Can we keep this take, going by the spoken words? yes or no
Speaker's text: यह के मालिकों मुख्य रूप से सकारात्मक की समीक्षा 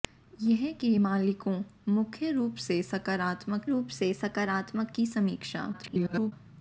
no